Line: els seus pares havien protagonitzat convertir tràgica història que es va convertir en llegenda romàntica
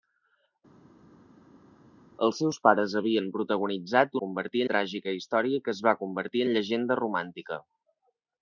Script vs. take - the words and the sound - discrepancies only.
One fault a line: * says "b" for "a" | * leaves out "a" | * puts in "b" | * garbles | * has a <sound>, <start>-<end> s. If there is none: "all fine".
all fine